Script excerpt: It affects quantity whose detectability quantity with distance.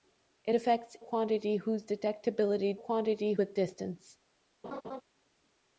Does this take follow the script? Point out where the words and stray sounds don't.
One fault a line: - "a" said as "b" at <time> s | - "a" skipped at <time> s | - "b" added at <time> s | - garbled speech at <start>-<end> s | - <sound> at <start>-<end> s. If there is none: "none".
- laugh at 4.6-5.0 s